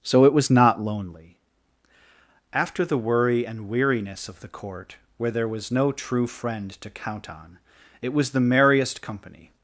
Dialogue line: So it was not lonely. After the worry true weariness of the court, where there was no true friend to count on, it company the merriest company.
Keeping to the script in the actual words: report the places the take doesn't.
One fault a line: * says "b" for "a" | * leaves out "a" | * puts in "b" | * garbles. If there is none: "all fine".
* says "and" for "true"
* says "was" for "company"